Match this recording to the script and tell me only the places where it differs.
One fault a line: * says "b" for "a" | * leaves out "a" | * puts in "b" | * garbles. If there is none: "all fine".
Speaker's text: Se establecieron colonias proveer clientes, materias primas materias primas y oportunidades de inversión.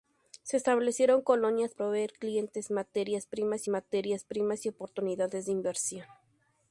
all fine